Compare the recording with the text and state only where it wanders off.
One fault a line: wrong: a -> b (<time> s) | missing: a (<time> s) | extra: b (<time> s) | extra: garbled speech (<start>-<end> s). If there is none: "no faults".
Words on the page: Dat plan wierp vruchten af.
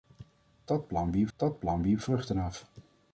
extra: dat plan wierp (1.4 s)